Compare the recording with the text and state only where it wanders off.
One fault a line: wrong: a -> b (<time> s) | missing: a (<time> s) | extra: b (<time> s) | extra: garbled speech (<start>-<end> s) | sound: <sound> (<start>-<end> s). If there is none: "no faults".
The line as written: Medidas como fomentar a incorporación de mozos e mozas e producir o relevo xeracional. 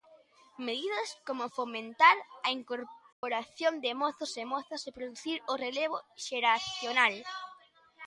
sound: dropout (3.1-3.2 s)